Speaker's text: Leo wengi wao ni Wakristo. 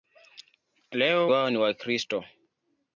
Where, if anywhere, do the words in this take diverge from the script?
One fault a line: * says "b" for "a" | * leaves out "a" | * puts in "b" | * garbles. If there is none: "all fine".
* leaves out "wengi"